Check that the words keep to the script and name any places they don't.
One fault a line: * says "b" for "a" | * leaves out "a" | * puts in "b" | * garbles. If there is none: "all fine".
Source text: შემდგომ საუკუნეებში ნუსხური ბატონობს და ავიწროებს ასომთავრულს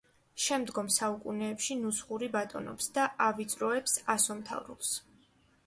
all fine